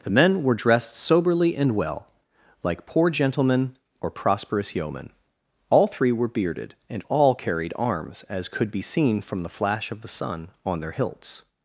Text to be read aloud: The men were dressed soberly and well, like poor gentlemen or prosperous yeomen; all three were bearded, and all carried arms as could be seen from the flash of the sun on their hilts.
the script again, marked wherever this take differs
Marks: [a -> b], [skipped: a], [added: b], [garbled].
The men were dressed soberly and well, like poor gentlemen or prosperous yeomen; all three were bearded, and all carried arms as could be seen from the flash of the sun on their hilts.